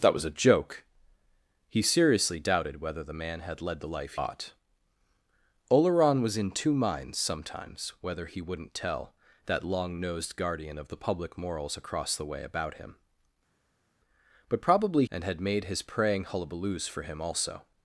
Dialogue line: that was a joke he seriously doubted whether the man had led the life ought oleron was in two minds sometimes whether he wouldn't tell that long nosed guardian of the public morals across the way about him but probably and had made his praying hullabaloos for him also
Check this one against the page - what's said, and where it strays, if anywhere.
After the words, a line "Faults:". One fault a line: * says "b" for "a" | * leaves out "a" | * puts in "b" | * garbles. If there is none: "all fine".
that was a joke he seriously doubted whether the man had led the life ought oleron was in two minds sometimes whether he wouldn't tell that long nosed guardian of the public morals across the way about him but probably and had made his praying hullabaloos for him also
Faults:
all fine